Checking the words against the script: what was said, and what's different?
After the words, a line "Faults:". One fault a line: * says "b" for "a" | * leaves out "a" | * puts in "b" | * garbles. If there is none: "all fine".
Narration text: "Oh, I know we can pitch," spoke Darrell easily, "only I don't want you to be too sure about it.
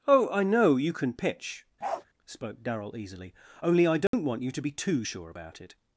"Oh, I know you can pitch," spoke Darrell easily, "only I don't want you to be too sure about it.
Faults:
* says "you" for "we"